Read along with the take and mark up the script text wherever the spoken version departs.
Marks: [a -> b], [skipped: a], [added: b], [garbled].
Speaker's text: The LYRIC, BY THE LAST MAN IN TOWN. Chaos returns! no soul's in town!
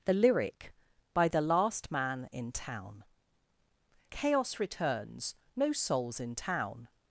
The LYRIC, BY THE LAST MAN IN TOWN. Chaos returns! no soul's in town!